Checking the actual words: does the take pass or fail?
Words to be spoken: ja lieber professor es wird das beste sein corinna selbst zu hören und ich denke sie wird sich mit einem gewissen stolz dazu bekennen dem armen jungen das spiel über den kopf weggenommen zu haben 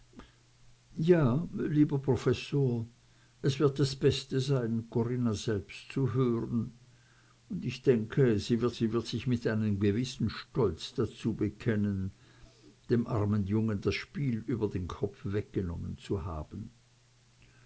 fail